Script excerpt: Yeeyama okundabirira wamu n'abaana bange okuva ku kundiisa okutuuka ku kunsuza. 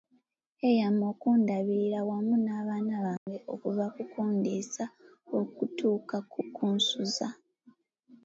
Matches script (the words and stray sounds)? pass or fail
fail